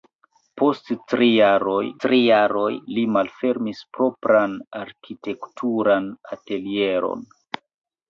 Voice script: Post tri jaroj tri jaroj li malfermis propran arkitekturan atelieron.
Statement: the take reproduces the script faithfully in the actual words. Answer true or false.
true